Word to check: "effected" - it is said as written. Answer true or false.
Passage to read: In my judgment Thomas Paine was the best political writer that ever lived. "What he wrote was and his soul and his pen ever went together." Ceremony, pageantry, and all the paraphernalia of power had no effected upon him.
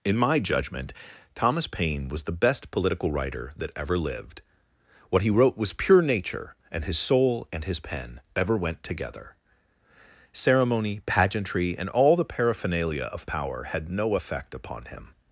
false